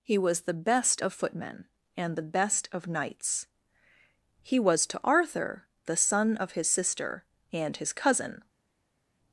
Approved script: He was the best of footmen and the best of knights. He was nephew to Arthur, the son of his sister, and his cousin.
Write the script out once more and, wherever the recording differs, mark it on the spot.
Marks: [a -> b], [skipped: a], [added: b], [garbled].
He was the best of footmen and the best of knights. He was [skipped: nephew] to Arthur, the son of his sister, and his cousin.